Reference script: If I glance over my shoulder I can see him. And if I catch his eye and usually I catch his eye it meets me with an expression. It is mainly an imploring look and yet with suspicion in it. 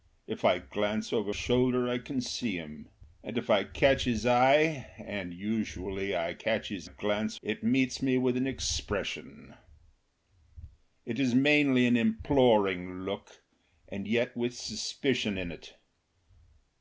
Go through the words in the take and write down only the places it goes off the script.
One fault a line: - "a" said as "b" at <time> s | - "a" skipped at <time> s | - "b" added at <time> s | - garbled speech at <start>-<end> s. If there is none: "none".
- "my" skipped at 1.3 s
- "eye" said as "glance" at 6.8 s